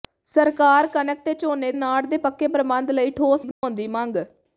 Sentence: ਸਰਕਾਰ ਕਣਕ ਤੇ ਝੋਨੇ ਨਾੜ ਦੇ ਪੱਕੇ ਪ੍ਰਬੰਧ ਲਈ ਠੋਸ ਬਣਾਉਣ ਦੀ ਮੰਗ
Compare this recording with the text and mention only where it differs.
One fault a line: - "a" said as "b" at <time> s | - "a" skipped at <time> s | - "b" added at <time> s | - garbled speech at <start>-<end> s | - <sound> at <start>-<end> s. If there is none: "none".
- dropout at 3.5-3.6 s